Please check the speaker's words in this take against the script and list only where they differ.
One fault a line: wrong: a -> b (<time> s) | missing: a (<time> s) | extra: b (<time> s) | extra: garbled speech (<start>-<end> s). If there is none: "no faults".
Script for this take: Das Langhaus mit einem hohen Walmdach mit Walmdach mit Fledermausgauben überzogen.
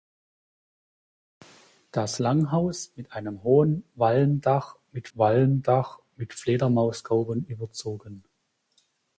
no faults